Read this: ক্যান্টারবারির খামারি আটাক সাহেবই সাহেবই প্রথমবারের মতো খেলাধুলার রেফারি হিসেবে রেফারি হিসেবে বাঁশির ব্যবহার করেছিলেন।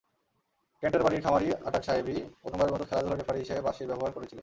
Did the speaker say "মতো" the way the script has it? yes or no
yes